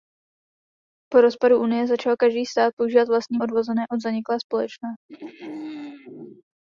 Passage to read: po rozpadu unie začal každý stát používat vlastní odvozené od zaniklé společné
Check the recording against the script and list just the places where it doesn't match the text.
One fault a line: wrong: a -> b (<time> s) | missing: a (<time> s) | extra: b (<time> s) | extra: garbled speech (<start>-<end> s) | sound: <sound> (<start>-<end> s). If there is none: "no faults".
sound: throat clearing (5.1-6.4 s)